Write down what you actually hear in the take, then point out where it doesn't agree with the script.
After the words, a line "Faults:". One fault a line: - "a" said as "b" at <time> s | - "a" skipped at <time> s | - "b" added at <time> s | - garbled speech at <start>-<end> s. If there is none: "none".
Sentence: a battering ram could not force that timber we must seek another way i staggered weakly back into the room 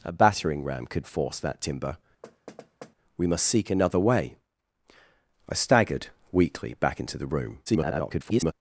a battering ram could force that timber we must seek another way i staggered weakly back into the room [garbled]
Faults:
- "not" skipped at 1.1 s
- garbled speech at 7.7-8.5 s